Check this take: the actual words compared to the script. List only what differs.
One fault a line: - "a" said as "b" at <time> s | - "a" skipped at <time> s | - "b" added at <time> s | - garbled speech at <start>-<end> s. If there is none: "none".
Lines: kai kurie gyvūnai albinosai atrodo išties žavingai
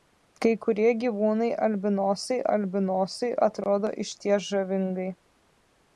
- "albinosai" added at 2.6 s